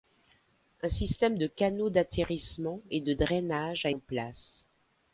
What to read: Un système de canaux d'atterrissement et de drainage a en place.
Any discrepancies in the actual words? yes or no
no